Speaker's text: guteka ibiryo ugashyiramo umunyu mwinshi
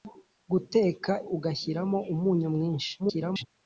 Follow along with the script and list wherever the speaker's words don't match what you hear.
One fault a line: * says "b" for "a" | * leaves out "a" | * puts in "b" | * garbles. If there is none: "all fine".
* leaves out "ibiryo"
* garbles